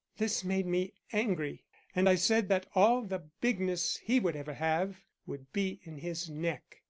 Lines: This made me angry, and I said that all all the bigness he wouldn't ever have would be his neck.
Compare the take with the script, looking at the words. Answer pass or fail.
fail